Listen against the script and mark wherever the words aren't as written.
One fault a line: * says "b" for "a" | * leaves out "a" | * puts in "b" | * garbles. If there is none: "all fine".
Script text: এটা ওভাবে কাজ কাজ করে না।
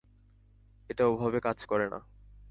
* leaves out "কাজ"